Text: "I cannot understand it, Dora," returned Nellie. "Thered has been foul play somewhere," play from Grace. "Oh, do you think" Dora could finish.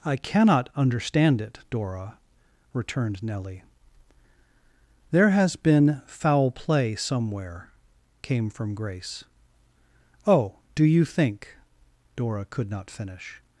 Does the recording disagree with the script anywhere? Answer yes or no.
yes